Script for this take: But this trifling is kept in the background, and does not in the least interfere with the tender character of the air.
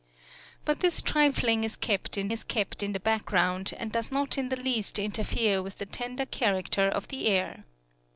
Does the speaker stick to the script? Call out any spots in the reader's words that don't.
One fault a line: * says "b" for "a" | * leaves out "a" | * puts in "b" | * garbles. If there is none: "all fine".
* puts in "is kept in"